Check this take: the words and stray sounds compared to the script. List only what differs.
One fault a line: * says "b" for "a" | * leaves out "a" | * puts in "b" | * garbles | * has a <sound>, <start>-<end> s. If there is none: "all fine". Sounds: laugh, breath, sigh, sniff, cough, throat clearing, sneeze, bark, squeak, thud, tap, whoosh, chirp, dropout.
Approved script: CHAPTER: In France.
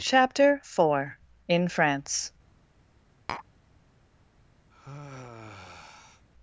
* puts in "four"
* has a tap, 3.3-3.5 s
* has a sigh, 4.7-6.3 s